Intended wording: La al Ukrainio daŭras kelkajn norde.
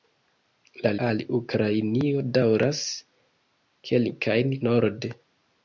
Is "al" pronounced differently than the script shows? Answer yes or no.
no